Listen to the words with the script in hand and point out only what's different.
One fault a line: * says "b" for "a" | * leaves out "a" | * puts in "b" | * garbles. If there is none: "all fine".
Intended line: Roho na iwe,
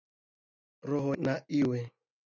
all fine